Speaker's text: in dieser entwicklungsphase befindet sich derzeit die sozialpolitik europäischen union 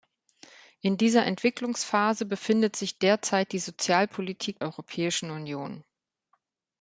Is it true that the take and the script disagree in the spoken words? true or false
false